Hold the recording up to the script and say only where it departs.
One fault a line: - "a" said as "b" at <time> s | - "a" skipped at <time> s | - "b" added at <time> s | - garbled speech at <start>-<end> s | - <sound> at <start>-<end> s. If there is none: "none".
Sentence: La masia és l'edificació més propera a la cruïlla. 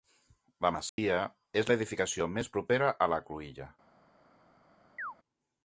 - dropout at 0.9-1.0 s
- chirp at 5.0-5.1 s